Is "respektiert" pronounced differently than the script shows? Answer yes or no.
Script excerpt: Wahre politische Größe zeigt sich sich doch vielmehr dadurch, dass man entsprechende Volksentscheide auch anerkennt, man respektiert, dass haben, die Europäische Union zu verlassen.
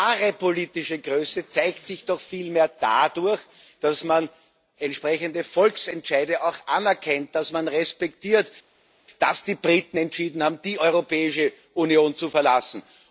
no